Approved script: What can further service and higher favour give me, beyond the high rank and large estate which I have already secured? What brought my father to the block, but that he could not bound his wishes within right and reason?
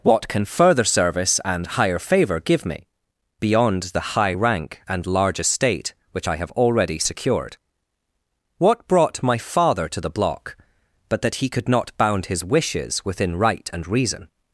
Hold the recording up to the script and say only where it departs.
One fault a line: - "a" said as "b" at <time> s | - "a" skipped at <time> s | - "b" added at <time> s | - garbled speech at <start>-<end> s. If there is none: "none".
none